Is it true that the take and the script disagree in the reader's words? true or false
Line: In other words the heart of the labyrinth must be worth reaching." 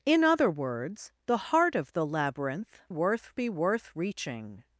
true